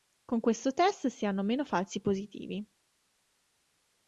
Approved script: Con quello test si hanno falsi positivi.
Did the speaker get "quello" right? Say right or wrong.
wrong